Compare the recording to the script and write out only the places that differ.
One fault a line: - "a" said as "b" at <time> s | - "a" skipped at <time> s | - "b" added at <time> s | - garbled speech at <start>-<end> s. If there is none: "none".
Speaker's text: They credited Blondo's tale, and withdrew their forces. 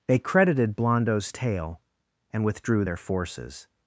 none